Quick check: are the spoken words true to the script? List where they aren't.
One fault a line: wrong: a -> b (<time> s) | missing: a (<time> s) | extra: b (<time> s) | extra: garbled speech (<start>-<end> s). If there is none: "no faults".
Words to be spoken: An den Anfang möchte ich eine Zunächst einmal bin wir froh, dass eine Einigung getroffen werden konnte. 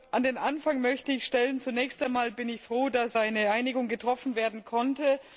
wrong: eine -> stellen (1.2 s)
wrong: wir -> ich (2.5 s)